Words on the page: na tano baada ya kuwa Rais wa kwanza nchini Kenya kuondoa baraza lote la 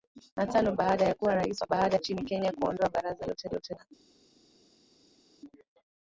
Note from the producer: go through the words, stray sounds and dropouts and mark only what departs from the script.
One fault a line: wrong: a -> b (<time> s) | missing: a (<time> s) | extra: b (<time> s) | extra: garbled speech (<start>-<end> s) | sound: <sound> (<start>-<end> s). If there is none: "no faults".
wrong: kwanza -> baada (1.7 s)
extra: lote (3.5 s)